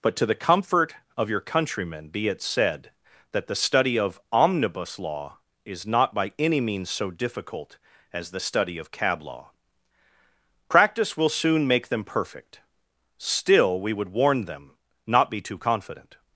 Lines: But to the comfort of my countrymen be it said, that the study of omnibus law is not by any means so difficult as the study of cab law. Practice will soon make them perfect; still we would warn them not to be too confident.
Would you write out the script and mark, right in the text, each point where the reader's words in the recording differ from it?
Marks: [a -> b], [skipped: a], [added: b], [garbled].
But to the comfort of [my -> your] countrymen be it said, that the study of omnibus law is not by any means so difficult as the study of cab law. Practice will soon make them perfect; still we would warn them not [skipped: to] be too confident.